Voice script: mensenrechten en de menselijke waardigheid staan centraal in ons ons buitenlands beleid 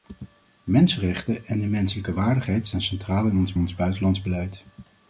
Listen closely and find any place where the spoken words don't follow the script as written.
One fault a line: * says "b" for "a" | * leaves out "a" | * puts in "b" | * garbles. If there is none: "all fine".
all fine